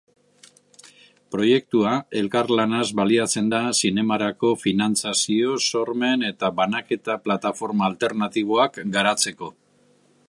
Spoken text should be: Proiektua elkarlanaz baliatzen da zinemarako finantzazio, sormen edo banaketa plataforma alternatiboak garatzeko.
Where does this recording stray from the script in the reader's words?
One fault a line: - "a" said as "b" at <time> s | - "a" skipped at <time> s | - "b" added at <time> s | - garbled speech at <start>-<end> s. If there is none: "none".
- "edo" said as "eta" at 6.3 s